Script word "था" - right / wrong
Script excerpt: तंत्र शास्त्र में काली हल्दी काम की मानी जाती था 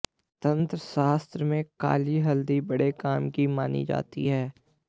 wrong